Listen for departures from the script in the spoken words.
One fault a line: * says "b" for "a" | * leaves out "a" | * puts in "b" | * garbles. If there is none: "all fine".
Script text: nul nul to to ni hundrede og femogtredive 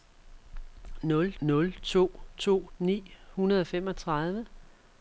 all fine